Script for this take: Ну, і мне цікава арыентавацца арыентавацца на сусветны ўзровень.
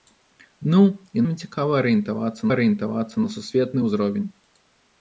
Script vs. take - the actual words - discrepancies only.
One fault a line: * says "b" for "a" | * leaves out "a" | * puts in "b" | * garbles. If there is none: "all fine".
all fine